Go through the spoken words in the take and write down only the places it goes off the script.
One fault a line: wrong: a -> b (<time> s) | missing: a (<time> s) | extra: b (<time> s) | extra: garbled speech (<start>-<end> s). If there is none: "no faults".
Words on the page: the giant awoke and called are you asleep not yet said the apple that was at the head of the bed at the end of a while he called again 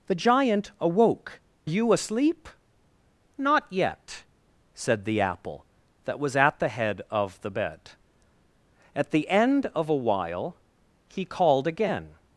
missing: and called are (1.4 s)